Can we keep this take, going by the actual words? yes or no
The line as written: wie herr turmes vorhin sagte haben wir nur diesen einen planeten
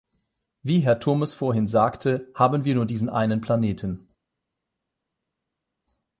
yes